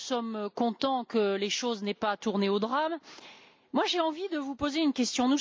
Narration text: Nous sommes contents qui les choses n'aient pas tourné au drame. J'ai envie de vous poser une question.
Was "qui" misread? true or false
true